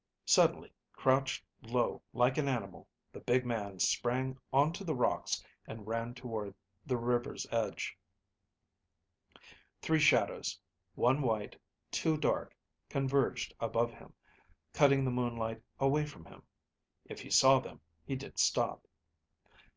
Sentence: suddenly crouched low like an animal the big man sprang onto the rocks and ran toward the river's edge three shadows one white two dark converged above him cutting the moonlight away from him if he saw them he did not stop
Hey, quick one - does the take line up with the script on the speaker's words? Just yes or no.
no